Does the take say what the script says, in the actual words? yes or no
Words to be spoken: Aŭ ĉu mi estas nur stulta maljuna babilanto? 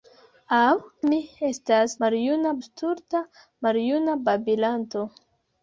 no